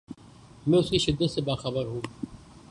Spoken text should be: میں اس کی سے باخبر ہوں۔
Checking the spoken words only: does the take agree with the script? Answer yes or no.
no